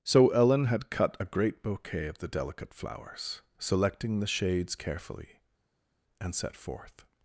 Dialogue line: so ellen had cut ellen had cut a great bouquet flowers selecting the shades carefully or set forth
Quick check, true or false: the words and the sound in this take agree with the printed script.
false